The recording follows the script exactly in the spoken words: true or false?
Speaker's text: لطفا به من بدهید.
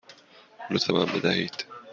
true